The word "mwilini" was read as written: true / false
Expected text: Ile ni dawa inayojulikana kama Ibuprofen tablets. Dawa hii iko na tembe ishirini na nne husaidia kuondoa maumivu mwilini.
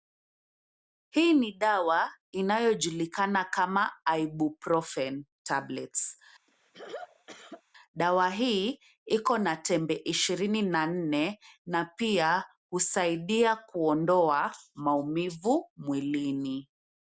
true